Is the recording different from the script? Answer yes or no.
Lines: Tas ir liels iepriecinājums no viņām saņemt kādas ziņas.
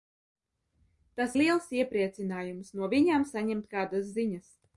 yes